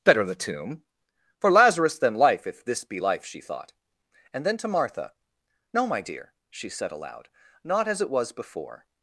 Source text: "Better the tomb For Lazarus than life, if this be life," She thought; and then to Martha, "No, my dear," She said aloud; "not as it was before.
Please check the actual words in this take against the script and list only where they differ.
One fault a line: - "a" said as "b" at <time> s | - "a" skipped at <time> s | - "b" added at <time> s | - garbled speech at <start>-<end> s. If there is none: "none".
none